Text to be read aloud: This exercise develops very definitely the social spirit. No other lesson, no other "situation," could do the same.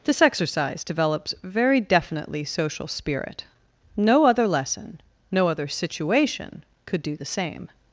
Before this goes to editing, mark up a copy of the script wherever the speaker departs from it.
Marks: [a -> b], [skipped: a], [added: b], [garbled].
This exercise develops very definitely [skipped: the] social spirit. No other lesson, no other "situation," could do the same.